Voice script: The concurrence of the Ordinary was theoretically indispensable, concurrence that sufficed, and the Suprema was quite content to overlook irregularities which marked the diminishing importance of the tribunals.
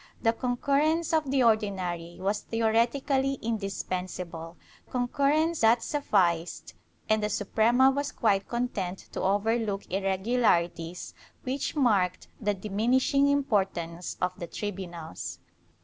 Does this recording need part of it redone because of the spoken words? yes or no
no